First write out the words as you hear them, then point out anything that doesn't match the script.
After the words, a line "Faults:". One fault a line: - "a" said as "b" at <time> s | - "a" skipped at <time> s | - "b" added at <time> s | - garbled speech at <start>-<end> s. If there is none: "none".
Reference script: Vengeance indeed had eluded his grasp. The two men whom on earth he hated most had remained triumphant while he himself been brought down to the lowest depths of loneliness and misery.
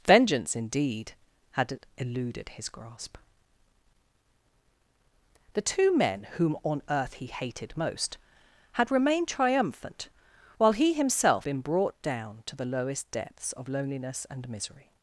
Vengeance indeed had eluded his grasp. The two men whom on earth he hated most had remained triumphant while he himself been brought down to the lowest depths of loneliness and misery.
Faults:
none